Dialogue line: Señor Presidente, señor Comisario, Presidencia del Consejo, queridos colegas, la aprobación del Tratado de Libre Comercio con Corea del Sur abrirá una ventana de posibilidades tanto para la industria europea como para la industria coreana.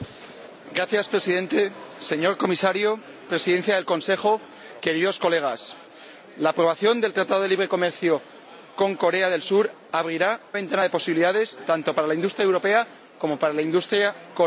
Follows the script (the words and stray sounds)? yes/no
no